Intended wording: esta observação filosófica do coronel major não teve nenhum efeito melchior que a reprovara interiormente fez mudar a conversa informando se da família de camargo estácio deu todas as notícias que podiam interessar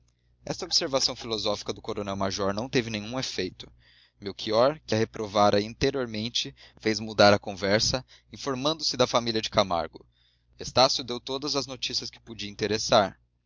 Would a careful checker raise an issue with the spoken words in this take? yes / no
no